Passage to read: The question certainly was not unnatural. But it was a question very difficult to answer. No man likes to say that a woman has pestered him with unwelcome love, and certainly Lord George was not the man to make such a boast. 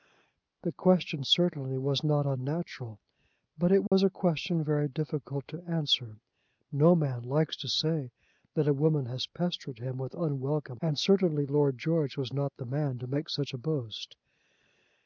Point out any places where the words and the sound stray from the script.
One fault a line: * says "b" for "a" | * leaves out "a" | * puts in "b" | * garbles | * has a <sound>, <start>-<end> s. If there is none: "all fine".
* has a dropout, 3.9-3.9 s
* leaves out "love"